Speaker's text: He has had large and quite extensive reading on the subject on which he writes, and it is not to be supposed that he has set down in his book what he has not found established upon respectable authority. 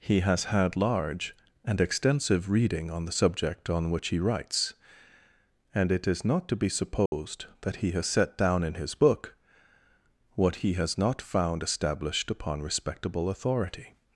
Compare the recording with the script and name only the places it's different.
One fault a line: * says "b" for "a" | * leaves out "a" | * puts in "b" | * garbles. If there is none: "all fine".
* leaves out "quite"